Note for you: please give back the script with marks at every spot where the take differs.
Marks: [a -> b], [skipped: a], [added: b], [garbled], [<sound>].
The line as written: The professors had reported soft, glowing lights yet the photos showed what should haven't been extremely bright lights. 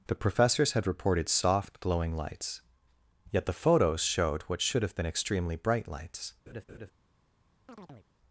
The professors had reported soft, glowing lights yet the photos showed what should [haven't -> have] been extremely bright lights. [laugh] [chirp]